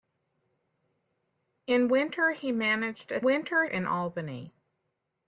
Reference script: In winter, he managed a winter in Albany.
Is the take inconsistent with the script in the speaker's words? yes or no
no